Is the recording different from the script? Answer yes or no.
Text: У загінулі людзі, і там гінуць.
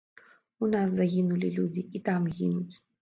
yes